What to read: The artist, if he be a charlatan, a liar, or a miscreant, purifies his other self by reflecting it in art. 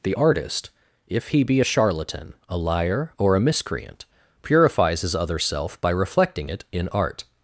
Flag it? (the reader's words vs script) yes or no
no